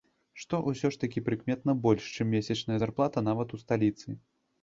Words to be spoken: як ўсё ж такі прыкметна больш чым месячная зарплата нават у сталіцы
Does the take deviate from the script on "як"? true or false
true